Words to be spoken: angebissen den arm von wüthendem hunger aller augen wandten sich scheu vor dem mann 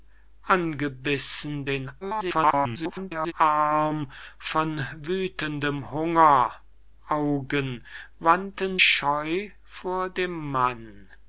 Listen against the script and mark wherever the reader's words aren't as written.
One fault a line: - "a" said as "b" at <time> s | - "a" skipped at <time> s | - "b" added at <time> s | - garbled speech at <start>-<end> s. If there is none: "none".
- garbled speech at 2.0-3.3 s
- "aller" skipped at 6.5 s
- "sich" skipped at 8.8 s